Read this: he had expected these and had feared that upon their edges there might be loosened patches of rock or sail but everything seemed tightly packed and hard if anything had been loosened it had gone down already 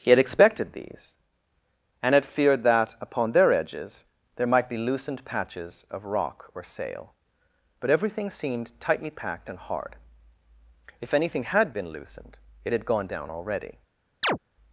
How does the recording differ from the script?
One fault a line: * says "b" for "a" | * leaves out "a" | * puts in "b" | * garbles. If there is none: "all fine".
all fine